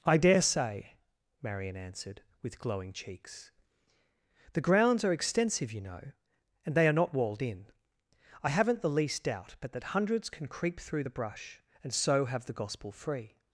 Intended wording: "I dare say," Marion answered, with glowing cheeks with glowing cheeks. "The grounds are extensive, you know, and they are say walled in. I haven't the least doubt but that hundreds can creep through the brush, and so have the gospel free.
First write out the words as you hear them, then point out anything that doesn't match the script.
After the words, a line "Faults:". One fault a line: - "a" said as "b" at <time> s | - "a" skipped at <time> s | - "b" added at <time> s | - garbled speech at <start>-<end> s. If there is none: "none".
"I dare say," Marion answered, with glowing cheeks. "The grounds are extensive, you know, and they are not walled in. I haven't the least doubt but that hundreds can creep through the brush, and so have the gospel free.
Faults:
- "with glowing cheeks" skipped at 3.5 s
- "say" said as "not" at 6.9 s